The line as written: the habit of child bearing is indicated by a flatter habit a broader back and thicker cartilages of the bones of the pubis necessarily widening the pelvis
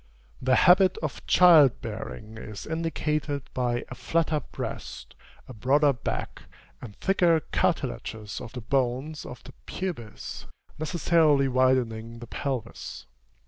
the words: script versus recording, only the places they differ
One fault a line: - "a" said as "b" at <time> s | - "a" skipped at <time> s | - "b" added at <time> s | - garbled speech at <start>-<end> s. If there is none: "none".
- "habit" said as "breast" at 4.4 s